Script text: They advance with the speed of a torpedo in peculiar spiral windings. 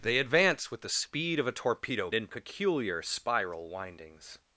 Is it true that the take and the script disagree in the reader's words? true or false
false